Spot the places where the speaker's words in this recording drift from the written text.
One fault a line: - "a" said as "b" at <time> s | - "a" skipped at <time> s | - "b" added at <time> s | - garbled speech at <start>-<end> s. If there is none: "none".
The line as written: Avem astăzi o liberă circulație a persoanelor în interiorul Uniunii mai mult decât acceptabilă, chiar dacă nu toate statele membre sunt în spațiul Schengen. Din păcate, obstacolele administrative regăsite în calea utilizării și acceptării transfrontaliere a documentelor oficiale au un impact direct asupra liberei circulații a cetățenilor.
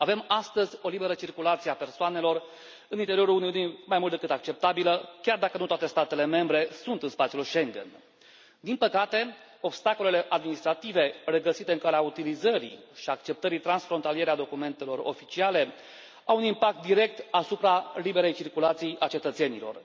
none